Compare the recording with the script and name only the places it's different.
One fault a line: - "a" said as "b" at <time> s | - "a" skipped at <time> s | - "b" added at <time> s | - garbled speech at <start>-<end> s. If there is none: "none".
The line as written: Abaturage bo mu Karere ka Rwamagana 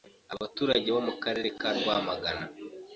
none